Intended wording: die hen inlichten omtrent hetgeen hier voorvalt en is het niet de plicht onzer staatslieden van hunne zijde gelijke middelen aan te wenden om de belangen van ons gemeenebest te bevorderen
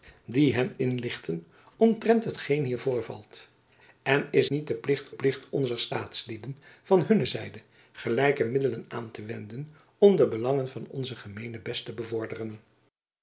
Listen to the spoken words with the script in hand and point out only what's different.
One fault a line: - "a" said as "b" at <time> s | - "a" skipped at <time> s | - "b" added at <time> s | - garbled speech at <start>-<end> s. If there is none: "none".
- "het" skipped at 4.5 s
- "plicht" added at 5.1 s